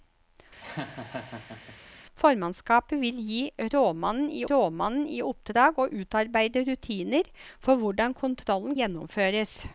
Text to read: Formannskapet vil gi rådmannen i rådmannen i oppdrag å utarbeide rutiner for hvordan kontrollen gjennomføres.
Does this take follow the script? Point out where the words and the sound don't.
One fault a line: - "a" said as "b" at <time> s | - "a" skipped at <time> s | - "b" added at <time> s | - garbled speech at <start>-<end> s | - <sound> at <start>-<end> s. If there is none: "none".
- laugh at 0.6-1.8 s